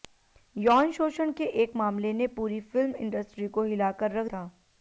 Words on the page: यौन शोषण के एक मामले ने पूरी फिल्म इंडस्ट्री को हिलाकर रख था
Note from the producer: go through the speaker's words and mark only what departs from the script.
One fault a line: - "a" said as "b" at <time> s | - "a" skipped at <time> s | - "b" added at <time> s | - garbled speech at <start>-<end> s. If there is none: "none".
none